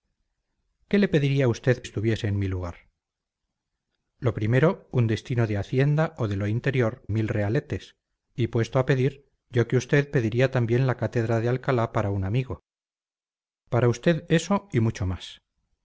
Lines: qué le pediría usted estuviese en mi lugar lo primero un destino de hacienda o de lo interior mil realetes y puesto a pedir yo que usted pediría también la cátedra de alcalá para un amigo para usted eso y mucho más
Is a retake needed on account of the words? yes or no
no